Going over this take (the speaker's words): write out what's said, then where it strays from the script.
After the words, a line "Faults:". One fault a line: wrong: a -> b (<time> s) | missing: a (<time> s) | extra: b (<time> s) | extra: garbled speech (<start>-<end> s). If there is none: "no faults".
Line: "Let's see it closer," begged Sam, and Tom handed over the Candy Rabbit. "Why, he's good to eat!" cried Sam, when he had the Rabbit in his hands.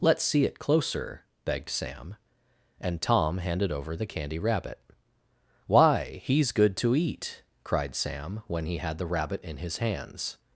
"Let's see it closer," begged Sam, and Tom handed over the Candy Rabbit. "Why, he's good to eat!" cried Sam, when he had the Rabbit in his hands.
Faults:
no faults